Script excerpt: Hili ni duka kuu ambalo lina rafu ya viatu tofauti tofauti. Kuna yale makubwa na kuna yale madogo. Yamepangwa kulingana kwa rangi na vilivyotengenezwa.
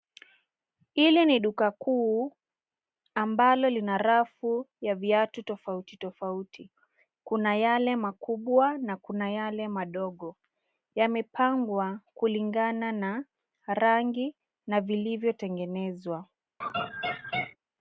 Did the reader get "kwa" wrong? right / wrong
wrong